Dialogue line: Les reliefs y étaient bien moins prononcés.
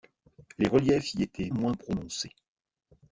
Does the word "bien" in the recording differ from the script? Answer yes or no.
yes